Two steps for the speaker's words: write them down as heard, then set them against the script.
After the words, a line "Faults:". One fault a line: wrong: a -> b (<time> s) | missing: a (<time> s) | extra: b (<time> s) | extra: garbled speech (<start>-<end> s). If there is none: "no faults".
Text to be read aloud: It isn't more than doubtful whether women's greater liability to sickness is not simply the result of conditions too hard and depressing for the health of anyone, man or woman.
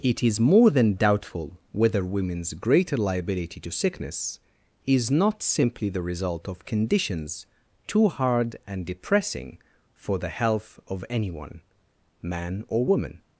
It is more than doubtful whether women's greater liability to sickness is not simply the result of conditions too hard and depressing for the health of anyone, man or woman.
Faults:
wrong: isn't -> is (0.2 s)